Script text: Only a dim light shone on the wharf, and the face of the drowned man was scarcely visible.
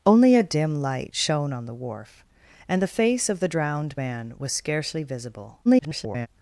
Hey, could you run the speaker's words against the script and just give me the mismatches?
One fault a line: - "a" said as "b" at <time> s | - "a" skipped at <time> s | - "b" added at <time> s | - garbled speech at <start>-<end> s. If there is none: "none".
- garbled speech at 5.6-6.3 s